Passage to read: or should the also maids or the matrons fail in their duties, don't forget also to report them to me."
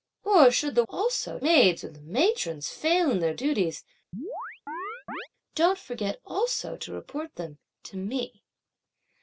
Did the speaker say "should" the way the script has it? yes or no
yes